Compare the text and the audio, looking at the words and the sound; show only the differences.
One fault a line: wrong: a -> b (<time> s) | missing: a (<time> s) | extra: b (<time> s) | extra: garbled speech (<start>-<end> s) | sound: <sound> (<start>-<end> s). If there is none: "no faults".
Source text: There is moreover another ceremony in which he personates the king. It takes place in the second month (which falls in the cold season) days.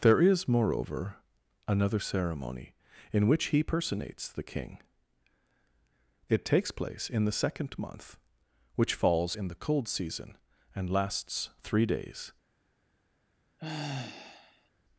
extra: and lasts three (10.8 s)
sound: sigh (13.6-14.7 s)